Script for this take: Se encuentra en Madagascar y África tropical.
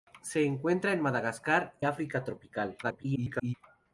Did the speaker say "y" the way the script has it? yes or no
no